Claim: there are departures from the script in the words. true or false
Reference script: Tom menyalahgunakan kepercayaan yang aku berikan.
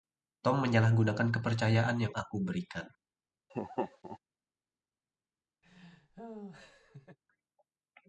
false